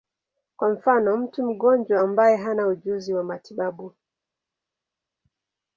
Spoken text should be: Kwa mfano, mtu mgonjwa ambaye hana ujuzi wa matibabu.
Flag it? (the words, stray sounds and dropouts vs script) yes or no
no